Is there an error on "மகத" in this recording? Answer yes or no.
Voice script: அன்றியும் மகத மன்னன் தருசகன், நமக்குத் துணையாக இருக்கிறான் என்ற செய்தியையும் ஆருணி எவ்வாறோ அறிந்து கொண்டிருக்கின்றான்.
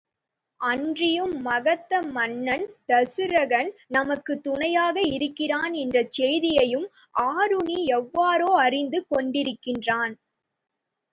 no